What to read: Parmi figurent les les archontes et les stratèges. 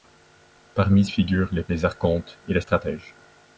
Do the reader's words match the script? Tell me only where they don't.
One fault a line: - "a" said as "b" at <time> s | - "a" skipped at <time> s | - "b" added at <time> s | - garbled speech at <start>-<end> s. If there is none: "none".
none